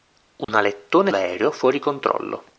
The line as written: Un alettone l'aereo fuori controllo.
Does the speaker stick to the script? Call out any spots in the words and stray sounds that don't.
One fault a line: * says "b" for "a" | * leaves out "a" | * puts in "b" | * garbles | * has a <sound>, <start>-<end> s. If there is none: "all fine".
* has a dropout, 0.4-0.5 s